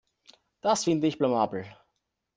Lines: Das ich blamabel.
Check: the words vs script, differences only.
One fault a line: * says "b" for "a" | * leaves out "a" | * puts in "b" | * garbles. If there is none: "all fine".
* puts in "finde"